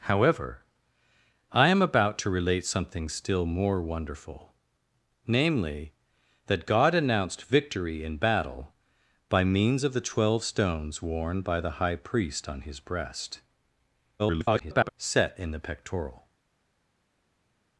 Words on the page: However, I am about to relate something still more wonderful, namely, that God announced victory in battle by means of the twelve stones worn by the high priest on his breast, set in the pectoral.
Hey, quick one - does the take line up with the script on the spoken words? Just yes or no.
no